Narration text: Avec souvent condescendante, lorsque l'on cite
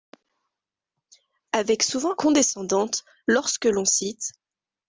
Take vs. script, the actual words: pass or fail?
pass